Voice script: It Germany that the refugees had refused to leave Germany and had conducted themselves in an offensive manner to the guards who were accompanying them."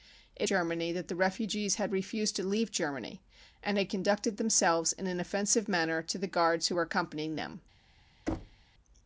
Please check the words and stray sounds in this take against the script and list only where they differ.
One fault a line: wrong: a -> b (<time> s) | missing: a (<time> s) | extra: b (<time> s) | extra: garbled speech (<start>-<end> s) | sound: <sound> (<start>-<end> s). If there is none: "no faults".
sound: thud (8.3-8.6 s)